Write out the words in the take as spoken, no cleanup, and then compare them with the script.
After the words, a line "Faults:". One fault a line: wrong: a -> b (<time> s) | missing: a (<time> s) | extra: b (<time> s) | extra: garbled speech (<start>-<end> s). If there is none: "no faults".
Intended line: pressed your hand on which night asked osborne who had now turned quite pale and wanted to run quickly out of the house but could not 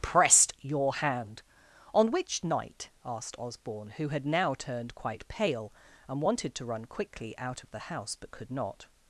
pressed your hand on which night asked osborne who had now turned quite pale and wanted to run quickly out of the house but could not
Faults:
no faults